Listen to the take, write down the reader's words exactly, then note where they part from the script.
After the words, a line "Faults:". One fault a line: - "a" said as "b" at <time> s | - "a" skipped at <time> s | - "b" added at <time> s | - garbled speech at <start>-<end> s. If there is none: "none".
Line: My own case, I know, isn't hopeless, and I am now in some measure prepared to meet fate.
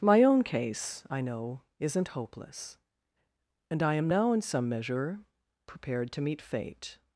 My own case, I know, isn't hopeless, and I am now in some measure prepared to meet fate.
Faults:
none